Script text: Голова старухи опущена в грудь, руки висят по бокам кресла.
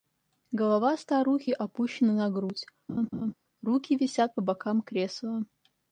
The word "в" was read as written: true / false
false